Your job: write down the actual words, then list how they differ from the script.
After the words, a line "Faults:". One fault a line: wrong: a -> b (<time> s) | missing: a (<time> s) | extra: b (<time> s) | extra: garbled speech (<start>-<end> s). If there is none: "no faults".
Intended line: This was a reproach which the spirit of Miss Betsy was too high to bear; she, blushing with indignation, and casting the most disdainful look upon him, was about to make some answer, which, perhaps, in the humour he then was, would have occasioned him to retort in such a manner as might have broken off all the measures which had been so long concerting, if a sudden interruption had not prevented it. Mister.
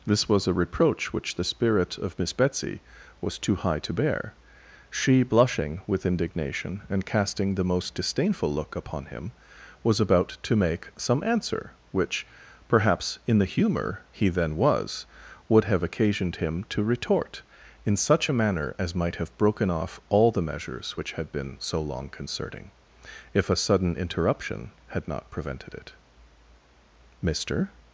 This was a reproach which the spirit of Miss Betsy was too high to bear; she, blushing with indignation, and casting the most disdainful look upon him, was about to make some answer, which, perhaps, in the humour he then was, would have occasioned him to retort in such a manner as might have broken off all the measures which had been so long concerting, if a sudden interruption had not prevented it. Mister.
Faults:
no faults